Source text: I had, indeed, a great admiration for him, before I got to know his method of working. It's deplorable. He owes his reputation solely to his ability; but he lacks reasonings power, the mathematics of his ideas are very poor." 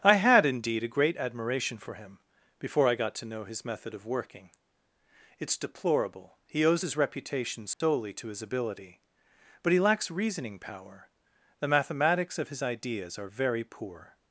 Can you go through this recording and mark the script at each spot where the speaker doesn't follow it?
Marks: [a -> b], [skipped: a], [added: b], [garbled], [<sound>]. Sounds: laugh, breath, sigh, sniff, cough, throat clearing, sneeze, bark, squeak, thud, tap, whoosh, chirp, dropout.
I had, indeed, a great admiration for him, before I got to know his method of working. It's deplorable. He owes his reputation solely [dropout] to his ability; but he lacks [reasonings -> reasoning] power, the mathematics of his ideas are very poor."